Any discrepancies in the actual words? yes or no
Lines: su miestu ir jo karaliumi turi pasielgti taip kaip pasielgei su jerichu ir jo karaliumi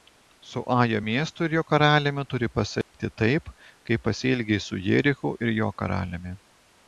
yes